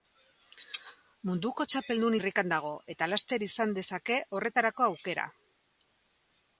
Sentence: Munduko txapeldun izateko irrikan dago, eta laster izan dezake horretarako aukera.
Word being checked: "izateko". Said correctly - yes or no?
no